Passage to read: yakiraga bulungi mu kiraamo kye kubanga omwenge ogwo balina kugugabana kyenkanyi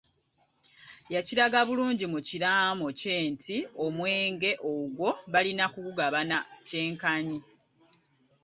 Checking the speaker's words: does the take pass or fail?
fail